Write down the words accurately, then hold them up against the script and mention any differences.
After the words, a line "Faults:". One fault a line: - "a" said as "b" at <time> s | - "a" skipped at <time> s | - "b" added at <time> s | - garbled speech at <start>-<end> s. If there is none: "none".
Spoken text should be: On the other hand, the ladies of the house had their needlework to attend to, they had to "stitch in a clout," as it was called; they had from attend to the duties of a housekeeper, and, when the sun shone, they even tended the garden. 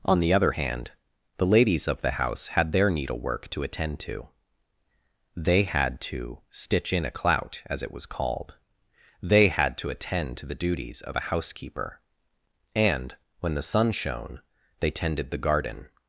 On the other hand, the ladies of the house had their needlework to attend to, they had to "stitch in a clout," as it was called; they had to attend to the duties of a housekeeper, and, when the sun shone, they tended the garden.
Faults:
- "from" said as "to" at 9.8 s
- "even" skipped at 14.9 s